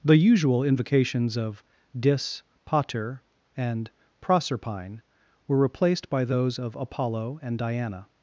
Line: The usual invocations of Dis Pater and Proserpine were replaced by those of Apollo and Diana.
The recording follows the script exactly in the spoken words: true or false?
true